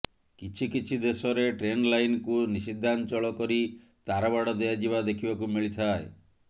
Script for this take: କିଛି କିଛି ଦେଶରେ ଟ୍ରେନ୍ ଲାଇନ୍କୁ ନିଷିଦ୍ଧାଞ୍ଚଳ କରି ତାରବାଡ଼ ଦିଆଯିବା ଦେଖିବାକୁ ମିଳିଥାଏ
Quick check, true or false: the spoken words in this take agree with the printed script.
true